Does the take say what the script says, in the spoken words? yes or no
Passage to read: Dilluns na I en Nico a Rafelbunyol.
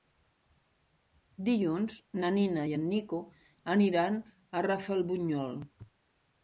no